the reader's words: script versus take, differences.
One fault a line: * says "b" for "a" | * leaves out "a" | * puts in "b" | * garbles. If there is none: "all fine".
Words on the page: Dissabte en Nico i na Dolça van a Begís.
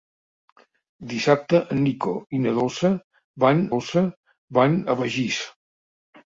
* puts in "Dolça van"